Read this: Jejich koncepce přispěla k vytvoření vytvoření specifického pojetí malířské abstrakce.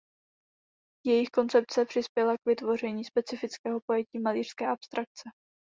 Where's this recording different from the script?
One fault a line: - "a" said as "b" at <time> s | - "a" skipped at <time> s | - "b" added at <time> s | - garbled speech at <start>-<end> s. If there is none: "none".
- "vytvoření" skipped at 3.0 s